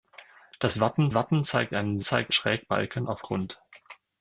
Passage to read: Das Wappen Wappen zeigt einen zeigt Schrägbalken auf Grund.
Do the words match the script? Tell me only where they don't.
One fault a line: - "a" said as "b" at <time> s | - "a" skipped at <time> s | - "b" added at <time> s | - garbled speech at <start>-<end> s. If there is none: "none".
none